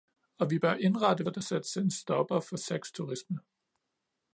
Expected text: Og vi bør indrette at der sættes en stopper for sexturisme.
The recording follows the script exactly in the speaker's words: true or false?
true